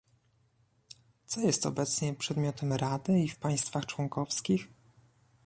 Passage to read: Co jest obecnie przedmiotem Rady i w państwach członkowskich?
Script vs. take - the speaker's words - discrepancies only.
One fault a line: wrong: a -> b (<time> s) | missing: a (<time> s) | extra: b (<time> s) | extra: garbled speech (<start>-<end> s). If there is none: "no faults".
no faults